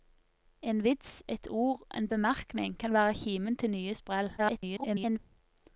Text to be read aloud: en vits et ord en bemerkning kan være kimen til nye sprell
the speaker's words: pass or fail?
fail